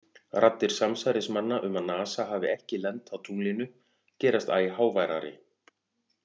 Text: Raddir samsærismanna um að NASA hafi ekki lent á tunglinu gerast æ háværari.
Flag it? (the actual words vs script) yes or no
no